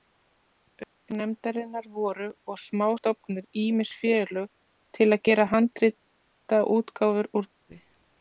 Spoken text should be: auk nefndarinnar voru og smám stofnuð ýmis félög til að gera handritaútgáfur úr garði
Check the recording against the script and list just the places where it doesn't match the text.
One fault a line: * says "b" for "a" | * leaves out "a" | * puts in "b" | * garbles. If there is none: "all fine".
all fine